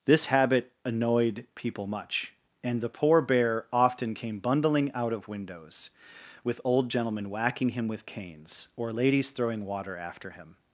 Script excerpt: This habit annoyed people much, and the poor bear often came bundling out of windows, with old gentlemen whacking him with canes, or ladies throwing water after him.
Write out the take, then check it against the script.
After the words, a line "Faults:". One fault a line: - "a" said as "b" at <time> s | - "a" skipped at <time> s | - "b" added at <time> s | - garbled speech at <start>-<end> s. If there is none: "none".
This habit annoyed people much, and the poor bear often came bundling out of windows, with old gentlemen whacking him with canes, or ladies throwing water after him.
Faults:
none